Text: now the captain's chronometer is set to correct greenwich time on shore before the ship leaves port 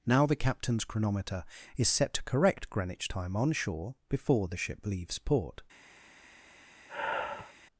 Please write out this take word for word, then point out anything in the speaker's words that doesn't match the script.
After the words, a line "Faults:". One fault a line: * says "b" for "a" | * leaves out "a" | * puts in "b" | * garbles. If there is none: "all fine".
now the captain's chronometer is set to correct greenwich time on shore before the ship leaves port
Faults:
all fine